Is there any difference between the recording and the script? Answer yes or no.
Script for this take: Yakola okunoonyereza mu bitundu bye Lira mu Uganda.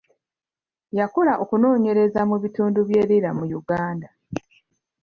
no